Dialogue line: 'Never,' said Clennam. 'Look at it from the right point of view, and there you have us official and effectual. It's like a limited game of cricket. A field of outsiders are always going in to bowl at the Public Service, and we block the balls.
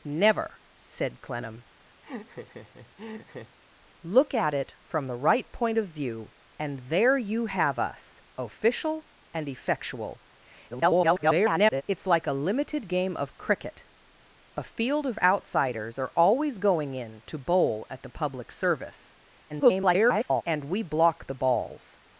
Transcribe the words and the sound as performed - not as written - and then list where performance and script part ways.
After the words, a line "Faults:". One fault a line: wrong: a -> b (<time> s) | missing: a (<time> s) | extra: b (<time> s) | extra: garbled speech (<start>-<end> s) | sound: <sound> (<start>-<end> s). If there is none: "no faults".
'Never,' said Clennam. 'Look at it from the right point of view, and there you have us official and effectual. [garbled] It's like a limited game of cricket. A field of outsiders are always going in to bowl at the Public Service, [garbled] and we block the balls.
Faults:
sound: laugh (2.0-3.6 s)
extra: garbled speech (10.7-11.8 s)
extra: garbled speech (19.5-20.4 s)